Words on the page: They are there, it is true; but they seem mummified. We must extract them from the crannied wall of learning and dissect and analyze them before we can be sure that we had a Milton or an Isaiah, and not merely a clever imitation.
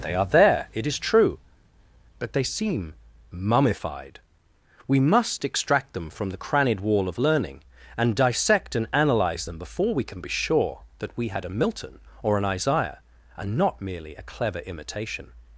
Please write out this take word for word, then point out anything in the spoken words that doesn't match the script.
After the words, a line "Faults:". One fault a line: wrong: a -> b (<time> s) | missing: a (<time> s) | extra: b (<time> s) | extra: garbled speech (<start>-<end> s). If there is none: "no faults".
They are there, it is true; but they seem mummified. We must extract them from the crannied wall of learning and dissect and analyze them before we can be sure that we had a Milton or an Isaiah, and not merely a clever imitation.
Faults:
no faults